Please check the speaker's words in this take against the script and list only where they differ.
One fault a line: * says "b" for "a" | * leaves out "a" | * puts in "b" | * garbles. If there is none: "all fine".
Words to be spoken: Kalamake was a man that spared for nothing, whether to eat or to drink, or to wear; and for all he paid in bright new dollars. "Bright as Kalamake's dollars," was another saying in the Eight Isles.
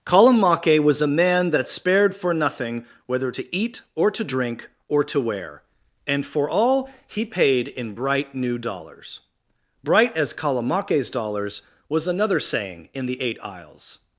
all fine